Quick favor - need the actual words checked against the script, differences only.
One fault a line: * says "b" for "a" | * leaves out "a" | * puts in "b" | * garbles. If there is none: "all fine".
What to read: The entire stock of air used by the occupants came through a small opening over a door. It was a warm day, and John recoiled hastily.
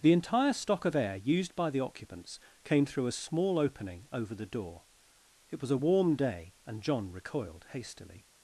* says "the" for "a"